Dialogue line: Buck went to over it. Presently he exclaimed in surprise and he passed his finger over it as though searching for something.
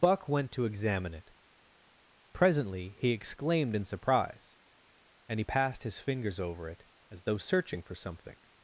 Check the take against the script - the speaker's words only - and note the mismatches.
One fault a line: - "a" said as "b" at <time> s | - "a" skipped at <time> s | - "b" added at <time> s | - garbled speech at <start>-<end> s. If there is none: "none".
- "over" said as "examine" at 0.7 s
- "finger" said as "fingers" at 6.0 s